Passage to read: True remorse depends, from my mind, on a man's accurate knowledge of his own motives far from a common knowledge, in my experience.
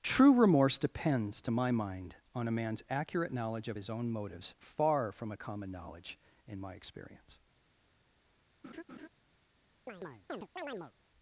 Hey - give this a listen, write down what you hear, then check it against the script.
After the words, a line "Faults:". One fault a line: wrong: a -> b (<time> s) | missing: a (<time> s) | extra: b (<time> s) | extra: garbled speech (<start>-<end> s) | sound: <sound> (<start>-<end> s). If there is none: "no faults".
True remorse depends, to my mind, on a man's accurate knowledge of his own motives far from a common knowledge, in my experience.
Faults:
wrong: from -> to (1.4 s)
sound: laugh (8.6-9.1 s)
sound: chirp (9.9-10.9 s)